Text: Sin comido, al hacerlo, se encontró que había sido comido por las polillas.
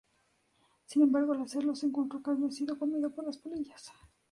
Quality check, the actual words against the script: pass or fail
fail